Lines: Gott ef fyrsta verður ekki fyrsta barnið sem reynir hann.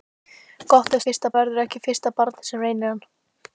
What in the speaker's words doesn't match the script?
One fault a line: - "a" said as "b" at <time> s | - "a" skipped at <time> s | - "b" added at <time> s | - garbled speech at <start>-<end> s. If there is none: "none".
none